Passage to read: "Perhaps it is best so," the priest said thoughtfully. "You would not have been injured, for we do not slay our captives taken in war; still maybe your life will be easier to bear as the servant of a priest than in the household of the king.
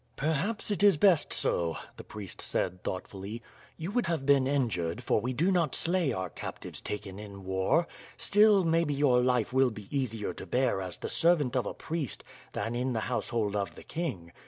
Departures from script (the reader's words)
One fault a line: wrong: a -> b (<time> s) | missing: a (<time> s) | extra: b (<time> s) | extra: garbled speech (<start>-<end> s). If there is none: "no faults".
missing: not (4.1 s)